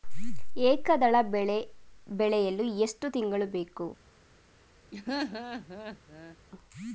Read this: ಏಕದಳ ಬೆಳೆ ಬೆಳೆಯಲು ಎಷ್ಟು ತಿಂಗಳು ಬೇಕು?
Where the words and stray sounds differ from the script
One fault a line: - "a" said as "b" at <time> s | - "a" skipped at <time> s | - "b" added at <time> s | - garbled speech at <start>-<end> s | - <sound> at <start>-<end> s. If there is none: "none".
- laugh at 4.9-6.4 s